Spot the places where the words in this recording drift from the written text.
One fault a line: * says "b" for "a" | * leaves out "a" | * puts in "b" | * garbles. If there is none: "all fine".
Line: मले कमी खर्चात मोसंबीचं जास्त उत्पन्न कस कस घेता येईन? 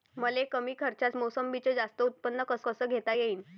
all fine